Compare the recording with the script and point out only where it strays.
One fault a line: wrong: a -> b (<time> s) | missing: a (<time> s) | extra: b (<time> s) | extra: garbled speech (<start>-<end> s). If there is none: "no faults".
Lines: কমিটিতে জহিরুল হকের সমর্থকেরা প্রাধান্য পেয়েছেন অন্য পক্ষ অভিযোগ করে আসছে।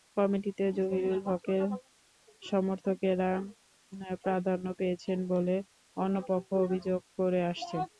extra: বলে (5.3 s)